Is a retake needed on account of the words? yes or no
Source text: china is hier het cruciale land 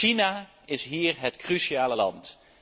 no